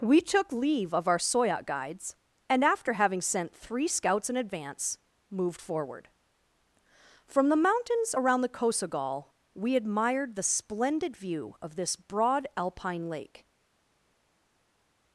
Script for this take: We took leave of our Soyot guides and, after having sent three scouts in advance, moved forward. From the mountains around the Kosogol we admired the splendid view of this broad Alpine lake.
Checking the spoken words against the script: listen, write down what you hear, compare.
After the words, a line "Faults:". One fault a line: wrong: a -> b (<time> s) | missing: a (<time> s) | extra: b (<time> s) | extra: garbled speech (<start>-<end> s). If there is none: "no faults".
We took leave of our Soyot guides and, after having sent three scouts in advance, moved forward. From the mountains around the Kosogol we admired the splendid view of this broad Alpine lake.
Faults:
no faults